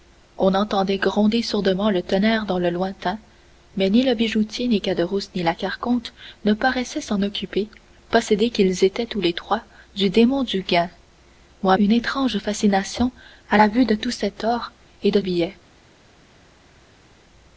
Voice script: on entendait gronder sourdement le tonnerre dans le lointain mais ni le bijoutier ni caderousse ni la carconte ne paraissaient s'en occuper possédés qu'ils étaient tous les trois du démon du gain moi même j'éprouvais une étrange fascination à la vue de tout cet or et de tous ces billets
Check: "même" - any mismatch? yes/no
yes